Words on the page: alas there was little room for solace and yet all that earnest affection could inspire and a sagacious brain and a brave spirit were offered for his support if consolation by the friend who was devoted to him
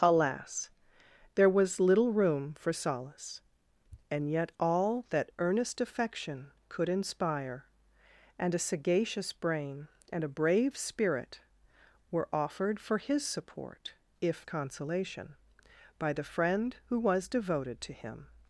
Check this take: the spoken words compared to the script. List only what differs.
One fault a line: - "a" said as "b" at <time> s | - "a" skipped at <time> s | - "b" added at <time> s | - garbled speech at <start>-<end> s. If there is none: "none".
none